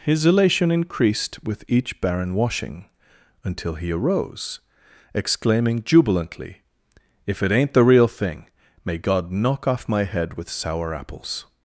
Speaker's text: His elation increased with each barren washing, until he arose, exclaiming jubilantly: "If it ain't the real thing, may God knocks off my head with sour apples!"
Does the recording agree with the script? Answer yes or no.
no